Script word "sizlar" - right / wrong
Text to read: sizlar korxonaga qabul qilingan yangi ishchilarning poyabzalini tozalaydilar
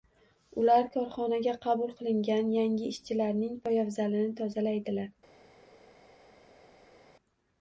wrong